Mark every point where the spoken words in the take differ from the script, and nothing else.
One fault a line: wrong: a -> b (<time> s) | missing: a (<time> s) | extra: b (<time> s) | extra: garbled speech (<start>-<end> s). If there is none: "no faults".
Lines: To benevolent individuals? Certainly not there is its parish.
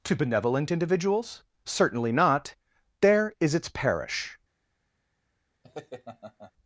no faults